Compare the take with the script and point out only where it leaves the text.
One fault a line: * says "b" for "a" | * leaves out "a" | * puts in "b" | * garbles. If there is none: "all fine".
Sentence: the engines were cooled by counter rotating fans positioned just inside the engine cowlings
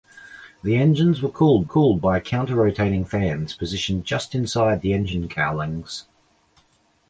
* puts in "cooled"